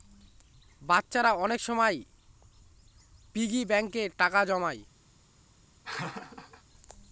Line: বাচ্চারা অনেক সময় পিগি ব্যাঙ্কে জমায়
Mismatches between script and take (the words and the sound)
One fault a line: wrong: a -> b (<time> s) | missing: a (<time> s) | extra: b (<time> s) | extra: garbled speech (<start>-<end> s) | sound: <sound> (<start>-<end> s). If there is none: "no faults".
extra: টাকা (4.2 s)
sound: laugh (5.8-6.6 s)